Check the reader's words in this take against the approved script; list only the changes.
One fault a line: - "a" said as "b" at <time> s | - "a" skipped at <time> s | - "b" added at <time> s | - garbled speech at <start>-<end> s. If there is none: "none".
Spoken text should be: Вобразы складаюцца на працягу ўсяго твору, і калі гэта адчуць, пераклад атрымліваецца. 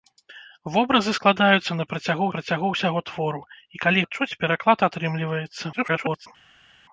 - "працягу" added at 2.4 s
- "гэта" skipped at 4.0 s
- garbled speech at 5.7-6.3 s